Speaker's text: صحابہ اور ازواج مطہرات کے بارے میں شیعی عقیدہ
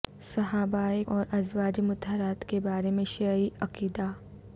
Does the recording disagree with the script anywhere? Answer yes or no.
no